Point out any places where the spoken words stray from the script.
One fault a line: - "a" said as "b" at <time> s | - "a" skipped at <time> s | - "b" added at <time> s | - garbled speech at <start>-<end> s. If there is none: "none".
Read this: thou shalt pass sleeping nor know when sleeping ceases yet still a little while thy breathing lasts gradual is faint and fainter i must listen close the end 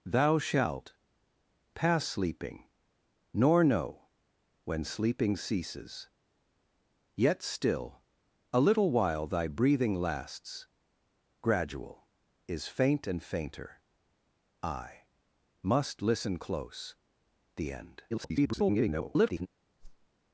- garbled speech at 18.1-19.5 s